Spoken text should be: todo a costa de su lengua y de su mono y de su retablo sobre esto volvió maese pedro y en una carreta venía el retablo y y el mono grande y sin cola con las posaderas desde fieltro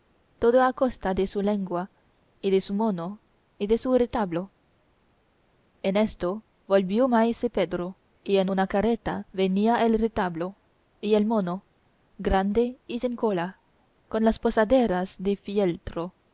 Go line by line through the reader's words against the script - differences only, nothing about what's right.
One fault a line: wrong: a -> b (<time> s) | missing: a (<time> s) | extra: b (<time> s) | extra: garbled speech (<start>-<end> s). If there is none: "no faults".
wrong: sobre -> en (5.8 s)
missing: y (11.1 s)
wrong: desde -> de (15.2 s)